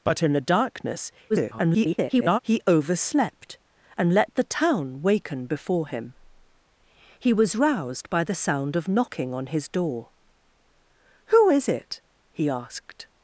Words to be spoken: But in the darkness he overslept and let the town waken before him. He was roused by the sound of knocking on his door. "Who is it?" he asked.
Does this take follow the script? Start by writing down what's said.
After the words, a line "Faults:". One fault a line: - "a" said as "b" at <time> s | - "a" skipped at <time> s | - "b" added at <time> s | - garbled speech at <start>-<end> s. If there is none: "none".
But in the darkness [garbled] he overslept and let the town waken before him. He was roused by the sound of knocking on his door. "Who is it?" he asked.
Faults:
- garbled speech at 1.3-2.4 s